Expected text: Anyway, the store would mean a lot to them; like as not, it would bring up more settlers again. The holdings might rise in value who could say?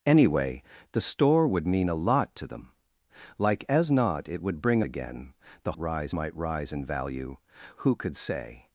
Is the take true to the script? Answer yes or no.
no